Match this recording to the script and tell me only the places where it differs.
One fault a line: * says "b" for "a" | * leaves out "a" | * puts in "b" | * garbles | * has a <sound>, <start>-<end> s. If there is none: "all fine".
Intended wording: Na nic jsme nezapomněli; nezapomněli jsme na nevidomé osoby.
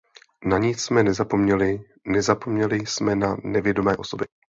all fine